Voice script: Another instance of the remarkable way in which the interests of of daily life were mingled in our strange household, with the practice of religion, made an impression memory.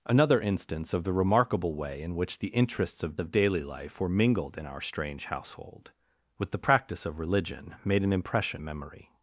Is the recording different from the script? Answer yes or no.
no